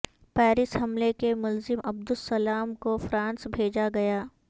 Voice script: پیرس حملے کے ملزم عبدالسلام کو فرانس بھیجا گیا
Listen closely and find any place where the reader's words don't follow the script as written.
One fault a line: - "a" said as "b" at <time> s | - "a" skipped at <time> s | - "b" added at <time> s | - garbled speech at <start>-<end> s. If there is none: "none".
none